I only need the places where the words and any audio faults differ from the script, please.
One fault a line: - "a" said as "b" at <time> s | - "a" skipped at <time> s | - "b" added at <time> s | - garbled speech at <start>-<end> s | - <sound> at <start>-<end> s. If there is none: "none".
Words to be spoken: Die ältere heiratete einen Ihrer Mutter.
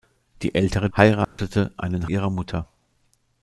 - dropout at 1.2-1.4 s